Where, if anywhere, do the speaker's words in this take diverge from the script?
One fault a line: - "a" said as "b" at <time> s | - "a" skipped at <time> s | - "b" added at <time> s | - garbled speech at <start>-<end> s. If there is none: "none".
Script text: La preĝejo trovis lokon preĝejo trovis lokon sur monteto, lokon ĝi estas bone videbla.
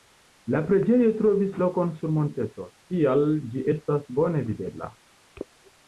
- "preĝejo trovis lokon" skipped at 1.9 s
- "lokon" said as "tial" at 2.9 s